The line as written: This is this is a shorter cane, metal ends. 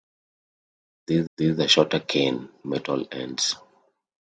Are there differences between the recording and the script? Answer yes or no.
no